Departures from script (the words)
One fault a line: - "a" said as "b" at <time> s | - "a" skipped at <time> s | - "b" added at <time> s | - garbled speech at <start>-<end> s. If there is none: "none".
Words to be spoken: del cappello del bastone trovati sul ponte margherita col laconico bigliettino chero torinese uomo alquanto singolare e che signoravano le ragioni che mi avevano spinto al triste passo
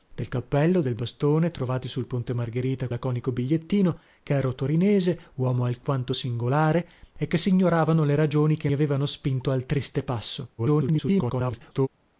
- "col" skipped at 2.9 s
- "mi" skipped at 8.7 s
- garbled speech at 10.6-11.9 s